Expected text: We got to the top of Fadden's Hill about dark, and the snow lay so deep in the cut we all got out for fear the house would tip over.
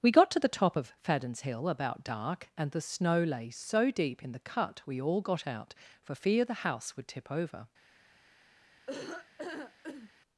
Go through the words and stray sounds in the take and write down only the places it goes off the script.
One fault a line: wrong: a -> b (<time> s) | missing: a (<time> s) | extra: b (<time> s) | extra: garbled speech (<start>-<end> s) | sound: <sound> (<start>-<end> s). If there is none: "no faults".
sound: laugh (8.9-10.1 s)